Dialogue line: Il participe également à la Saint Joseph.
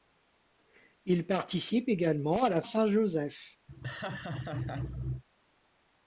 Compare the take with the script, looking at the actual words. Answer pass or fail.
pass